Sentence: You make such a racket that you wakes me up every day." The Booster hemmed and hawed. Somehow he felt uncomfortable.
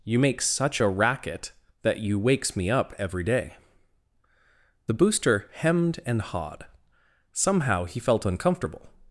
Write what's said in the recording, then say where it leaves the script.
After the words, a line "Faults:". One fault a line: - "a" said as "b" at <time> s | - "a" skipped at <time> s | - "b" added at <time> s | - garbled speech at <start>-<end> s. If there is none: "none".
You make such a racket that you wakes me up every day." The Booster hemmed and hawed. Somehow he felt uncomfortable.
Faults:
none